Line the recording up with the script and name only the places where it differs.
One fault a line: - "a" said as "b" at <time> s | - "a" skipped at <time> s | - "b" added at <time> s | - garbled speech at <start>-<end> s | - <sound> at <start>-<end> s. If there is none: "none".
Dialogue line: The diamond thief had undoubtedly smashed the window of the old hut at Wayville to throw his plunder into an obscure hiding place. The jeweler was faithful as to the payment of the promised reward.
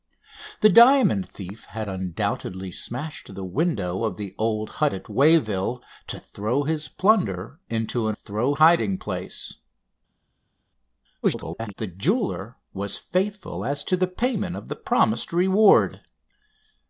- "obscure" said as "throw" at 8.1 s
- garbled speech at 11.2-11.7 s